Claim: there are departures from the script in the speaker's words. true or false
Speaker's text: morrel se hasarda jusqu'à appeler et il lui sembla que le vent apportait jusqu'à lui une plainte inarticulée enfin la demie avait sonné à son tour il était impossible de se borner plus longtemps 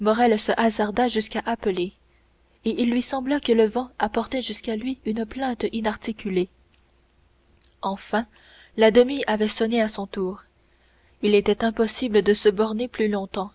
false